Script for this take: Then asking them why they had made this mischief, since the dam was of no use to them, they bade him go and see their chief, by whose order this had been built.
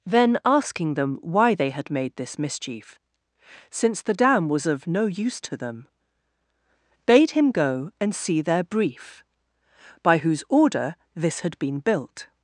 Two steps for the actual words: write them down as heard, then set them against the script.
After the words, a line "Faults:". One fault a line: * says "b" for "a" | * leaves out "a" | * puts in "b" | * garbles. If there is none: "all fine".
Then asking them why they had made this mischief, since the dam was of no use to them, bade him go and see their brief, by whose order this had been built.
Faults:
* leaves out "they"
* says "brief" for "chief"